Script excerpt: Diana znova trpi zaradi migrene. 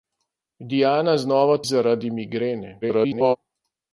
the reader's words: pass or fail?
fail